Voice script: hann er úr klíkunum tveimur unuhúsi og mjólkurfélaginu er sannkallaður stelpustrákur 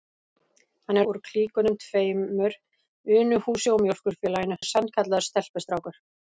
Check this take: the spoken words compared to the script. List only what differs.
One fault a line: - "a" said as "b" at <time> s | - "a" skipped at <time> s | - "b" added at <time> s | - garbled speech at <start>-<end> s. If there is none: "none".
none